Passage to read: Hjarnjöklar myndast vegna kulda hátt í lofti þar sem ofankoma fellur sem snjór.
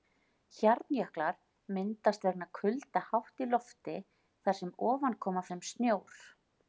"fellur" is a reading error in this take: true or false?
true